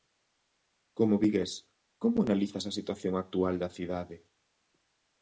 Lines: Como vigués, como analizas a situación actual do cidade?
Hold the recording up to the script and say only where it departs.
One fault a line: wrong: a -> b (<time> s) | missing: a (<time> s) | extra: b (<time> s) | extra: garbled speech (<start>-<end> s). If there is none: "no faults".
wrong: do -> da (3.6 s)